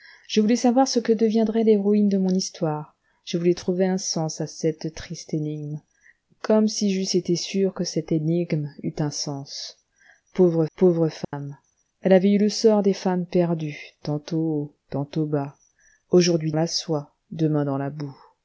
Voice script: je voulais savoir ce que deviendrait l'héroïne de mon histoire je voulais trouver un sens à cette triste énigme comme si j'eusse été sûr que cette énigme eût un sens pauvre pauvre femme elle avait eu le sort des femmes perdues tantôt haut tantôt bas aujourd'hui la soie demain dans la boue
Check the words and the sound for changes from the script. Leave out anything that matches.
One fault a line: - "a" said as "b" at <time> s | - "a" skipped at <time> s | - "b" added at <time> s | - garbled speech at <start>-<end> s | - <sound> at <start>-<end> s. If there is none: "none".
- dropout at 11.2-11.3 s